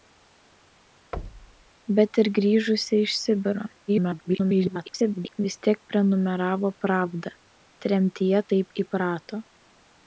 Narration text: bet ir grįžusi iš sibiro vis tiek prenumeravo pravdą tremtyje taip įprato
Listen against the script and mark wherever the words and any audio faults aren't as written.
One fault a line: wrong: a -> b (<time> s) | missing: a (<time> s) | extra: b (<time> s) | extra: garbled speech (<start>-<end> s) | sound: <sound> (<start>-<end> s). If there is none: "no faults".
sound: thud (1.1-1.7 s)
extra: garbled speech (3.9-5.4 s)